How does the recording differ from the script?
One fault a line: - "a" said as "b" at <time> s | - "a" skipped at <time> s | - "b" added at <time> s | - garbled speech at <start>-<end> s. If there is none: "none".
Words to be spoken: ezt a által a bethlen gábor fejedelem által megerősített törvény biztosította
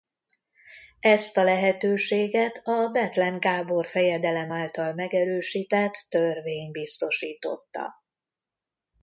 - "által" said as "lehetőséget" at 1.4 s